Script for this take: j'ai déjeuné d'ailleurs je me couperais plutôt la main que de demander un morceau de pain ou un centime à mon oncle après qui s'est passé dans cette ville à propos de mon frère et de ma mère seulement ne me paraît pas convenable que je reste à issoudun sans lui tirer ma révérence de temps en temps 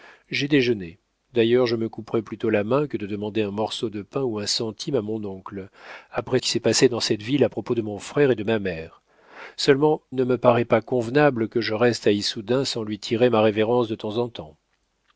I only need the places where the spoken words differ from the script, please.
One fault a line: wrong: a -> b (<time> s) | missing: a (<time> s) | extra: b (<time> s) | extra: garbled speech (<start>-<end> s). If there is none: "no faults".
no faults